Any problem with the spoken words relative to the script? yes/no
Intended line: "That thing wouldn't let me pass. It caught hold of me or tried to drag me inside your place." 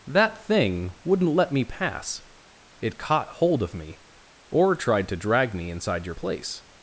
no